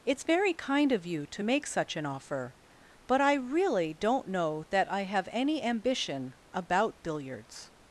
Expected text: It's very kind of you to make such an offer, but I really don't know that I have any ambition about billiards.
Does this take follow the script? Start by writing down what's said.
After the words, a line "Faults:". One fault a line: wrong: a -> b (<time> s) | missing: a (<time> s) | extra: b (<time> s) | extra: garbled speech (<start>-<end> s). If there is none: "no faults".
It's very kind of you to make such an offer, but I really don't know that I have any ambition about billiards.
Faults:
no faults